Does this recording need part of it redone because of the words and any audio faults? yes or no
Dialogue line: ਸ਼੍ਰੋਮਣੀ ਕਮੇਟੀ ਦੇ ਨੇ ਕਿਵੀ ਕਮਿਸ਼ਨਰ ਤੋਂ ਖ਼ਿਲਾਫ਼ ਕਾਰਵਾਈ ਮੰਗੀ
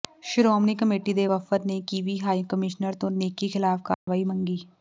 yes